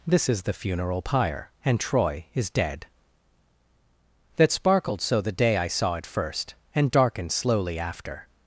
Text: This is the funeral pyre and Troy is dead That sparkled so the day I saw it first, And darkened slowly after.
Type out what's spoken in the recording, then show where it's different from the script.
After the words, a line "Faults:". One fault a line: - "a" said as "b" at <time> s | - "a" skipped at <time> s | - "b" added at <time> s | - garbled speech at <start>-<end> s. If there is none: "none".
This is the funeral pyre and Troy is dead That sparkled so the day I saw it first, And darkened slowly after.
Faults:
none